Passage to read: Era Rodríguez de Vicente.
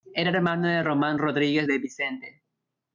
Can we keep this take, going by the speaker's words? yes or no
no